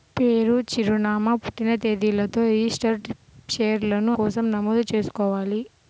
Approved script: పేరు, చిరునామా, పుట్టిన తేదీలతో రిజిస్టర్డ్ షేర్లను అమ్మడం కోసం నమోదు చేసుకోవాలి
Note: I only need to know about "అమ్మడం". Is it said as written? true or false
false